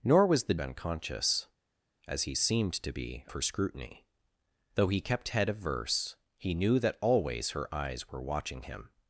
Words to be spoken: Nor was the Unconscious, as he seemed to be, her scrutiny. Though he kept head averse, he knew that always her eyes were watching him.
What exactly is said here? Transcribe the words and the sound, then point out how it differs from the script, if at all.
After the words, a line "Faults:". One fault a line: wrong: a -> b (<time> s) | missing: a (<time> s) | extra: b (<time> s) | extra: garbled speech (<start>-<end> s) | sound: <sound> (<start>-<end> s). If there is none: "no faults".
Nor was the Unconscious, as he seemed to be, her scrutiny. Though he kept head averse, he knew that always her eyes were watching him.
Faults:
no faults